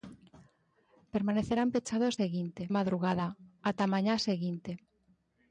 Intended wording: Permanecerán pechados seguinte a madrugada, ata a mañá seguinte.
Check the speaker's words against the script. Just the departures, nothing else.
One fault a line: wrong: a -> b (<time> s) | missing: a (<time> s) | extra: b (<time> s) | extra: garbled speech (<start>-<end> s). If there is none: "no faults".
no faults